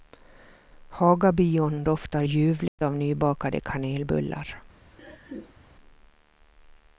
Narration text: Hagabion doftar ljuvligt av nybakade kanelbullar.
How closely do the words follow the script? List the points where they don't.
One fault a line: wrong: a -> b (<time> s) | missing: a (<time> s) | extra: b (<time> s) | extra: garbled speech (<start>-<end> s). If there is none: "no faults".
no faults